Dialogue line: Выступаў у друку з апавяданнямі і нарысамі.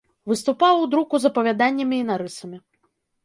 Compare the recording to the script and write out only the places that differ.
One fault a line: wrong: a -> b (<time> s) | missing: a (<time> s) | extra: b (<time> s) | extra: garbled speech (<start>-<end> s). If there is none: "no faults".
no faults